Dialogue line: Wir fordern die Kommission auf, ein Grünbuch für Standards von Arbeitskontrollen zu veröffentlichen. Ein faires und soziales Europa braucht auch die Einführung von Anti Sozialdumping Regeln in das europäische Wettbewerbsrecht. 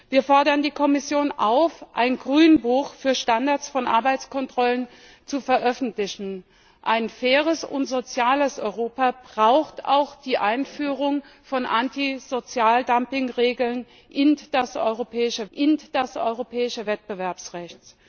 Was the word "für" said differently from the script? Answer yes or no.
no